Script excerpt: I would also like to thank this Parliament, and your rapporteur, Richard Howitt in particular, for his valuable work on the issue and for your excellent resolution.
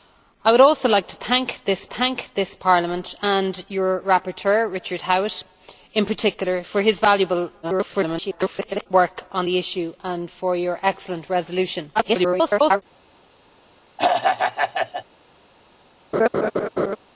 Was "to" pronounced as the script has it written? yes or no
yes